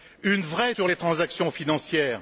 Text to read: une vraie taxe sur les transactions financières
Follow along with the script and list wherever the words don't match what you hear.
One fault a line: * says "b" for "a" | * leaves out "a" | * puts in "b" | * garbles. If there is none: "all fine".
* leaves out "taxe"